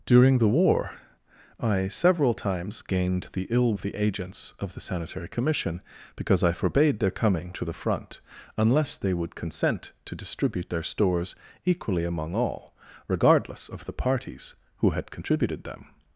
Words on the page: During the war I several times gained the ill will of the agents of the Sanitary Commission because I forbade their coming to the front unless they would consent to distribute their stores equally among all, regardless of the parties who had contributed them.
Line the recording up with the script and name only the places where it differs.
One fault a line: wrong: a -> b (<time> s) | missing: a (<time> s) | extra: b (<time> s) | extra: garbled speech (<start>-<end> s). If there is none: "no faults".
missing: will (3.8 s)